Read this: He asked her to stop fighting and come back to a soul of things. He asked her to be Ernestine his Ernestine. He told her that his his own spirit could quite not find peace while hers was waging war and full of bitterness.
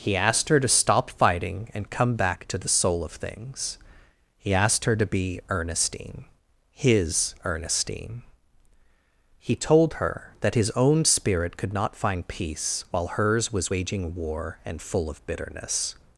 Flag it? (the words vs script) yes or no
yes